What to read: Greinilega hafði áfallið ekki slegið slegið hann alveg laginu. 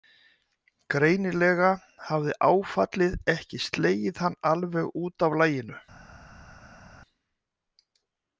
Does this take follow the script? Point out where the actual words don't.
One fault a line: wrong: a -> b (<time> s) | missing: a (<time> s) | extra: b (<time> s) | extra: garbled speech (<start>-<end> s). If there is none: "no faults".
missing: slegið (4.2 s)
extra: út af (5.1 s)